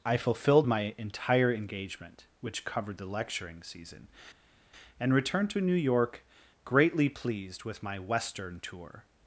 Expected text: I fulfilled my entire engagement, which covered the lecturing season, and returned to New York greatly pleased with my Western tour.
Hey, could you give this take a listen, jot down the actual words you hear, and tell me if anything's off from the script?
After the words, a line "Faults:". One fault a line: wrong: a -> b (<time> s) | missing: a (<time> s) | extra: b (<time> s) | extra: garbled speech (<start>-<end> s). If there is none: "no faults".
I fulfilled my entire engagement, which covered the lecturing season, and returned to New York greatly pleased with my Western tour.
Faults:
no faults